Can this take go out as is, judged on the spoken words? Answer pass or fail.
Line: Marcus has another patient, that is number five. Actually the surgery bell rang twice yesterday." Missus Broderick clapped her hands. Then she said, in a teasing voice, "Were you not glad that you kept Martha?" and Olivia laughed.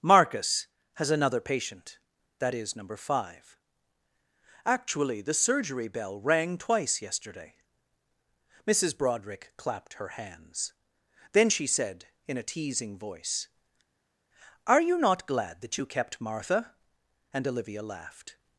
fail